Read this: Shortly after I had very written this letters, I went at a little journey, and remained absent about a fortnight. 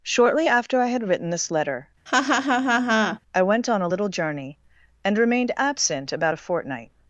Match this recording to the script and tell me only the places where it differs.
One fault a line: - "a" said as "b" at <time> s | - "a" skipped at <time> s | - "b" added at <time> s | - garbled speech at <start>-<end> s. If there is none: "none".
- "very" skipped at 1.1 s
- "letters" said as "letter" at 1.5 s
- "at" said as "on" at 3.7 s